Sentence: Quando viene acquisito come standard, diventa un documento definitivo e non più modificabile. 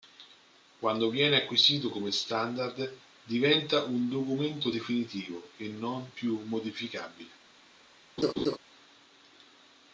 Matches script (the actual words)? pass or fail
pass